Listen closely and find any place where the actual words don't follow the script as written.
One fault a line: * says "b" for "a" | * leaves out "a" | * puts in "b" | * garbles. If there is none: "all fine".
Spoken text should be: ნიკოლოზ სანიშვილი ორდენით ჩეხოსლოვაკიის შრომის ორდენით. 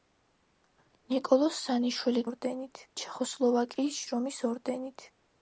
all fine